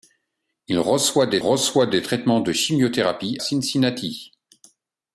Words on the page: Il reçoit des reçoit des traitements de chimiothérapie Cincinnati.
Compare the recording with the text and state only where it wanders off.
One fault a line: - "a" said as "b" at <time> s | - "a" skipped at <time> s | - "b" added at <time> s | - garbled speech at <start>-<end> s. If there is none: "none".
none